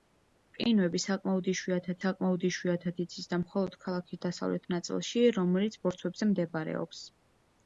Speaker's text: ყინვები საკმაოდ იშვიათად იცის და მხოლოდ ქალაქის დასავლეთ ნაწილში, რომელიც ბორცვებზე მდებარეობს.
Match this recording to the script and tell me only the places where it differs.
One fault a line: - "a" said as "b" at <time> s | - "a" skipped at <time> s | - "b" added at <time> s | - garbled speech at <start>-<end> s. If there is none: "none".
- "საკმაოდ იშვიათად" added at 2.0 s